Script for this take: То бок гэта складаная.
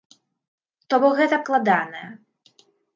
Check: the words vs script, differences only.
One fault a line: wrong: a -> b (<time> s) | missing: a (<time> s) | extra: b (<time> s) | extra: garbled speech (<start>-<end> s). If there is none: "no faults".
no faults